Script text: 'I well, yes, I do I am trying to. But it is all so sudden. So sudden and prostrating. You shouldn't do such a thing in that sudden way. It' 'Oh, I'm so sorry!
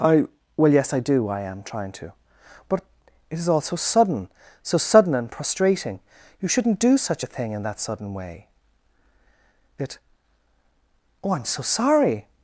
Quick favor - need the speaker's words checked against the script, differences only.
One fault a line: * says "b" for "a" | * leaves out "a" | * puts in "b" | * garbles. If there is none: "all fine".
all fine